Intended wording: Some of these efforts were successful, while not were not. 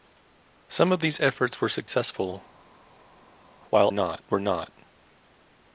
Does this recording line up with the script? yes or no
yes